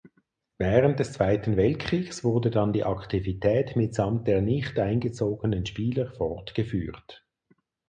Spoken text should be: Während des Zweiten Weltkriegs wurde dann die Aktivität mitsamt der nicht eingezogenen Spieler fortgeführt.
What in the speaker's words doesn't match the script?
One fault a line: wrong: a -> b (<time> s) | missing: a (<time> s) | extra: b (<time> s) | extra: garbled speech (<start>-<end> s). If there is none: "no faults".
no faults